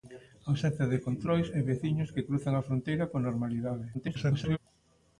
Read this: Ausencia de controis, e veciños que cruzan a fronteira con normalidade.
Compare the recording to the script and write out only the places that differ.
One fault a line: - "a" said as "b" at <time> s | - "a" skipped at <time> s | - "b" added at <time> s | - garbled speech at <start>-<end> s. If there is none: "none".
- garbled speech at 3.9-4.6 s